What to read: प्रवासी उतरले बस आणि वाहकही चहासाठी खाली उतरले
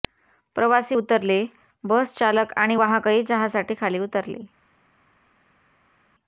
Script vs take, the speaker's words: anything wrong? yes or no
yes